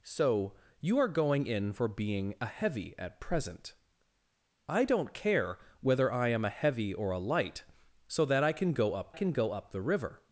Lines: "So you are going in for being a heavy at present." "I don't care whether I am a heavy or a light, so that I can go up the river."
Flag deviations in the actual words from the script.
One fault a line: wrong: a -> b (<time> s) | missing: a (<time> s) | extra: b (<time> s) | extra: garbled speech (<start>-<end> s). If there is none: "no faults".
extra: can go up (9.1 s)